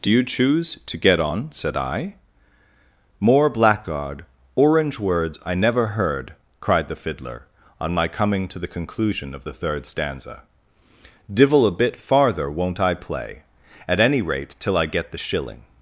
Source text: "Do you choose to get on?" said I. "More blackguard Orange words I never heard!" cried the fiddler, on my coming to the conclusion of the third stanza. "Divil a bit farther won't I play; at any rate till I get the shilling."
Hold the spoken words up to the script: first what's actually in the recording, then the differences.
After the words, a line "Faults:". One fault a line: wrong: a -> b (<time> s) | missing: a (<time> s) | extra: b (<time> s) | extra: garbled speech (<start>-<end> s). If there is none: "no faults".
"Do you choose to get on?" said I. "More blackguard Orange words I never heard!" cried the fiddler, on my coming to the conclusion of the third stanza. "Divil a bit farther won't I play; at any rate till I get the shilling."
Faults:
no faults